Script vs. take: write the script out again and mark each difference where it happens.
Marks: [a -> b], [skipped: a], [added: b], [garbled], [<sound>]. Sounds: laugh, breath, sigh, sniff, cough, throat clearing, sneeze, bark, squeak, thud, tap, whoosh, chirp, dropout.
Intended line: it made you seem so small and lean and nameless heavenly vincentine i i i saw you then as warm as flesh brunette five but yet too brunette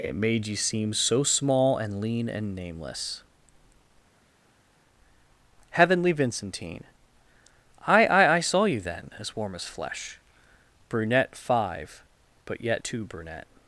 it made you seem so small and lean and nameless heavenly vincentine i i i saw you then as warm as flesh brunette five but yet too brunette